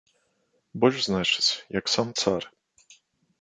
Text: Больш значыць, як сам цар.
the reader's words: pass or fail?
pass